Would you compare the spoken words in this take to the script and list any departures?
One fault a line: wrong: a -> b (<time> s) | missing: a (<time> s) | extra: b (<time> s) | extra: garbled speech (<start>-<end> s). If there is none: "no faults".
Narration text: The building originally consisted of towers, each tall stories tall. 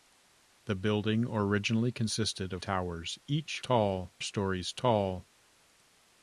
no faults